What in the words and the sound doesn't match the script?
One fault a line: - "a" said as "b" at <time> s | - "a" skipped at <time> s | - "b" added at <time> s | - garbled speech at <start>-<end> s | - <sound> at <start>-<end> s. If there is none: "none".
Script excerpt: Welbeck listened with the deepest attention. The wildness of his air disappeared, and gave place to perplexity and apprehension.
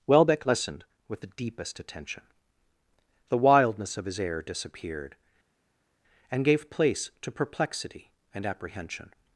none